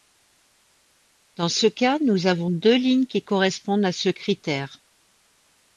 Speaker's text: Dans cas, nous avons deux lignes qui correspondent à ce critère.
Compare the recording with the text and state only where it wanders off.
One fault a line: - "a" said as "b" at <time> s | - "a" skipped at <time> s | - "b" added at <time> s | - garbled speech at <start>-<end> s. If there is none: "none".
- "ce" added at 1.5 s